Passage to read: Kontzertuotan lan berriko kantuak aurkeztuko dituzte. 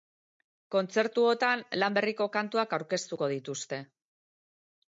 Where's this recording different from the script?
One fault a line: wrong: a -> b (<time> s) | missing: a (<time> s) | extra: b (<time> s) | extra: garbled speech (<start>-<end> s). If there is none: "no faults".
no faults